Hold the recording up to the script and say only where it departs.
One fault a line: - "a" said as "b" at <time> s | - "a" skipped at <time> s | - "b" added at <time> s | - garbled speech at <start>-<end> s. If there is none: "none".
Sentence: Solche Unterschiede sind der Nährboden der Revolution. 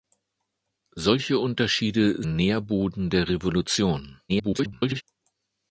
- "sind der" skipped at 2.2 s
- garbled speech at 4.3-5.0 s